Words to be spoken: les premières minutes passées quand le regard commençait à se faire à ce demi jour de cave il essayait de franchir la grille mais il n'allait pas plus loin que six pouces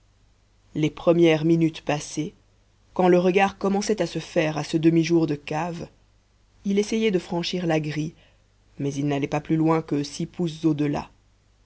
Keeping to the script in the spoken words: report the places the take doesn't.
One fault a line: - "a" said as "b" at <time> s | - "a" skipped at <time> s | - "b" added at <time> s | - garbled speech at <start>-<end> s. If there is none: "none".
none